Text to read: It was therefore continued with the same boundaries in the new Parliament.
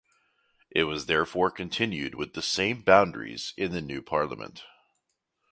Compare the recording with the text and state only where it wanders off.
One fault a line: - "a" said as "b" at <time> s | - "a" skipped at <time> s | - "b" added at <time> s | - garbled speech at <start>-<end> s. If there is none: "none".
none